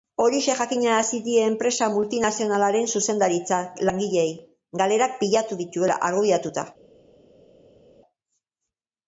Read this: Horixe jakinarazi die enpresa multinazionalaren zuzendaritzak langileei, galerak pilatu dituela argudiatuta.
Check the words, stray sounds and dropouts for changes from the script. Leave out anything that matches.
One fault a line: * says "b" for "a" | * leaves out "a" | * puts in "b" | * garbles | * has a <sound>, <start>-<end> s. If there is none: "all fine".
all fine